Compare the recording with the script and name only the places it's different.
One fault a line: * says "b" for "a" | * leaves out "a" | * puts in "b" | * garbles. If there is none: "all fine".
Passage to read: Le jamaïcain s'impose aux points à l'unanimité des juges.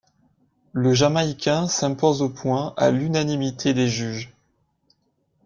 all fine